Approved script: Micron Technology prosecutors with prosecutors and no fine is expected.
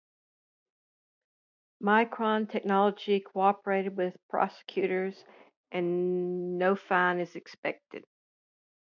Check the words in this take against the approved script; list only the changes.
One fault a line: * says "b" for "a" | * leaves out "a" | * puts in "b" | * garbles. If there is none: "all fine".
* says "cooperated" for "prosecutors"